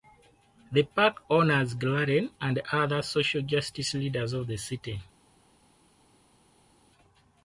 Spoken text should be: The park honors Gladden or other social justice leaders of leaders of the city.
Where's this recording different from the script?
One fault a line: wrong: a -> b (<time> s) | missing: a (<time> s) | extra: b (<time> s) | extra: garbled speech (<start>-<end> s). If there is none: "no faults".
wrong: or -> and (2.4 s)
missing: leaders of (4.5 s)